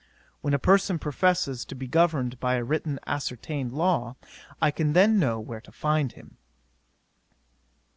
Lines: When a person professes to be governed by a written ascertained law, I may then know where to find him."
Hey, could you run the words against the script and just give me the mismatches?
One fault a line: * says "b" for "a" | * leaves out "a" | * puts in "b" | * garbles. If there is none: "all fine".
* says "can" for "may"